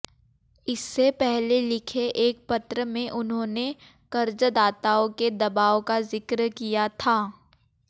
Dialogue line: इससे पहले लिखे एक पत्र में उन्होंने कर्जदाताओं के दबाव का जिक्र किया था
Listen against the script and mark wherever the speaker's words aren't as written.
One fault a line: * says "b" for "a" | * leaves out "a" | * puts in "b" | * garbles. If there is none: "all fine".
all fine